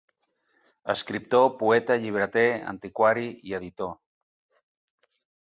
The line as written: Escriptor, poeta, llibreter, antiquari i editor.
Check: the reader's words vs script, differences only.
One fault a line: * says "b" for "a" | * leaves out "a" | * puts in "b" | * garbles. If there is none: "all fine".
all fine